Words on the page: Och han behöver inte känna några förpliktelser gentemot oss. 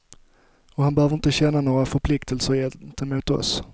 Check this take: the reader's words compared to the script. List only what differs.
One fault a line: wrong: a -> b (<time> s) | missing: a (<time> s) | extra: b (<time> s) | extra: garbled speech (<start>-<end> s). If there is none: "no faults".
no faults